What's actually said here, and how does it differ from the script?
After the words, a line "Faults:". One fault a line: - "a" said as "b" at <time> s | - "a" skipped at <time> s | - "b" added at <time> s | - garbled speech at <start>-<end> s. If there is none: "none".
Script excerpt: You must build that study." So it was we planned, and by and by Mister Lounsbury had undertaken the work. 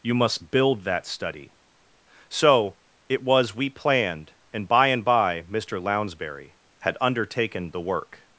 You must build that study." So it was we planned, and by and by Mister Lounsbury had undertaken the work.
Faults:
none